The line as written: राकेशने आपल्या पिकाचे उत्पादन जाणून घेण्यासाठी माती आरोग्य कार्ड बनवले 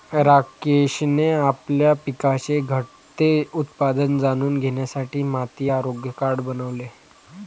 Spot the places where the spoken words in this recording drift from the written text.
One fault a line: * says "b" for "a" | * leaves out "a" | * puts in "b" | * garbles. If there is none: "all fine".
* puts in "घटते"